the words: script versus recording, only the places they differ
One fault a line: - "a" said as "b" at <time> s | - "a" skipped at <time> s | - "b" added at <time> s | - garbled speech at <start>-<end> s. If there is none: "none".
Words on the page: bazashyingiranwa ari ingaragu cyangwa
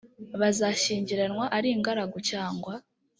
none